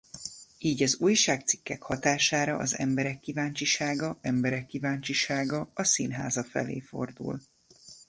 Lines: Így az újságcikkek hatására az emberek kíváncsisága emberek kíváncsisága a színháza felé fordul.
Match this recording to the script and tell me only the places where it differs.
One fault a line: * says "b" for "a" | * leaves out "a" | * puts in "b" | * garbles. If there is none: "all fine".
all fine